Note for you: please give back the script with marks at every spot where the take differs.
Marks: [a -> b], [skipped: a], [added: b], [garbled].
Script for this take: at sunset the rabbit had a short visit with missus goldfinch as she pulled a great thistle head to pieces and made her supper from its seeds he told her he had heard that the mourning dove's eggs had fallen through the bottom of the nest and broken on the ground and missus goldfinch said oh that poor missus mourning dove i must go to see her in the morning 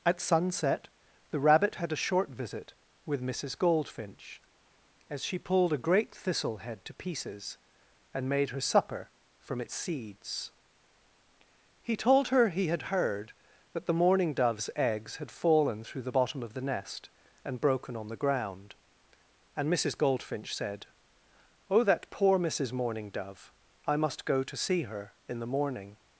at sunset the rabbit had a short visit with missus goldfinch as she pulled a great thistle head to pieces and made her supper from its seeds he told her he had heard that the mourning dove's eggs had fallen through the bottom of the nest and broken on the ground and missus goldfinch said oh that poor missus mourning dove i must go to see her in the morning